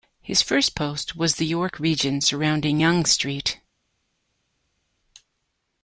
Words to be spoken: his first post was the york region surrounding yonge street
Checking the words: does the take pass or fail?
pass